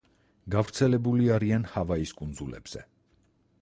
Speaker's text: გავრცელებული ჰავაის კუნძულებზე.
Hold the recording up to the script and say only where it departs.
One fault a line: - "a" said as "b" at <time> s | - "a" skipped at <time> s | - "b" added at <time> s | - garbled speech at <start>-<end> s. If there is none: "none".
- "არიან" added at 1.4 s